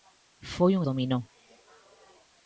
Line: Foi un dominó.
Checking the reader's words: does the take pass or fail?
pass